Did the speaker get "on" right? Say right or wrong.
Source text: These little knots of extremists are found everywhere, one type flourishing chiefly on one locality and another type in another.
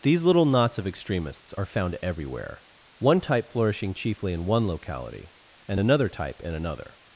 wrong